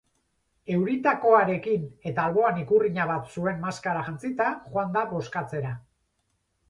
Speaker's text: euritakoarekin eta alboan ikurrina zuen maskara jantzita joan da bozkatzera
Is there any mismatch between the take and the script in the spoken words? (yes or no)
yes